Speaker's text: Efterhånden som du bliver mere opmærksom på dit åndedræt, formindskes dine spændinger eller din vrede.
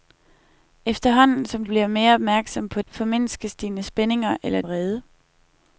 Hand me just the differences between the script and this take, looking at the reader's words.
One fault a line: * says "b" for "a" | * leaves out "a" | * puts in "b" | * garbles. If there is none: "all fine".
* leaves out "du"
* leaves out "dit åndedræt"
* leaves out "din"